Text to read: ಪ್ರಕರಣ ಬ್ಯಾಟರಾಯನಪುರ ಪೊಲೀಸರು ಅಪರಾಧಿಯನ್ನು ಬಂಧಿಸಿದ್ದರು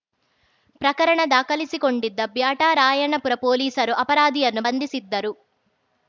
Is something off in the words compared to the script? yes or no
yes